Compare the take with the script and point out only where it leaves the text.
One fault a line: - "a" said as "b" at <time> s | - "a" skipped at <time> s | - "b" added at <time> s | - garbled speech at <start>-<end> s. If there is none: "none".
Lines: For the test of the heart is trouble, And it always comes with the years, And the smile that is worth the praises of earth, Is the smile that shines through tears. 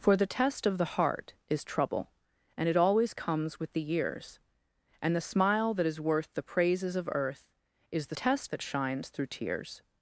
- "smile" said as "test" at 8.1 s